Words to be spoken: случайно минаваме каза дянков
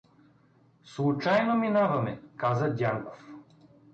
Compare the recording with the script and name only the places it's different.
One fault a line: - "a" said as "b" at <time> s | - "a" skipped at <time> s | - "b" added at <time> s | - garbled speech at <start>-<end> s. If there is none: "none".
none